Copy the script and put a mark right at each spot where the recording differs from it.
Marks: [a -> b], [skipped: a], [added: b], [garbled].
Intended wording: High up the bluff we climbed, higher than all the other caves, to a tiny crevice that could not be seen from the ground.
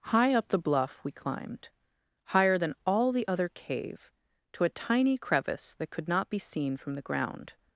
High up the bluff we climbed, higher than all the other [caves, -> cave] to a tiny crevice that could not be seen from the ground.